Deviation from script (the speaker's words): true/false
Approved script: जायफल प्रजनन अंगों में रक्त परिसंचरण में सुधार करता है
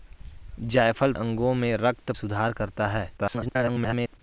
true